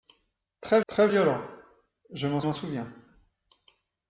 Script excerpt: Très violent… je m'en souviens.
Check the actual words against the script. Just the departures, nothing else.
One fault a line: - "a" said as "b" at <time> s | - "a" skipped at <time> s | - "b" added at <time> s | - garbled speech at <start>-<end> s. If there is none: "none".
- "très" added at 0.9 s
- "m'en" added at 2.4 s